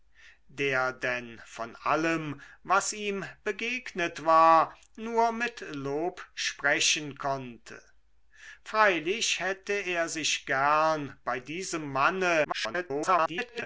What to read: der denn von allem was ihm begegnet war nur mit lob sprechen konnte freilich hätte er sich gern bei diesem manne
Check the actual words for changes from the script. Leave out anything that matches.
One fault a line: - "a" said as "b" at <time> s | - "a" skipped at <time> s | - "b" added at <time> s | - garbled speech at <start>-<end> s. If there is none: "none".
- garbled speech at 12.4-13.6 s